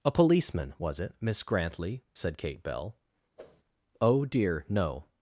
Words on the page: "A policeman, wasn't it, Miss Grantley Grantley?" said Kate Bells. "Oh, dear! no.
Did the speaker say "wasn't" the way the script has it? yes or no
no